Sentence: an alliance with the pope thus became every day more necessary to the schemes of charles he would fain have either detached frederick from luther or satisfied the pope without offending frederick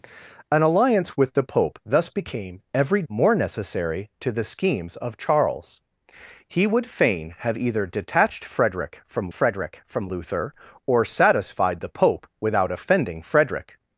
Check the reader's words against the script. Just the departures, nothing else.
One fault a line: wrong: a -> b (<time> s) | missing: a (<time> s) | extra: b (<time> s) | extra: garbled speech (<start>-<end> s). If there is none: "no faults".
missing: day (3.0 s)
extra: frederick from (9.3 s)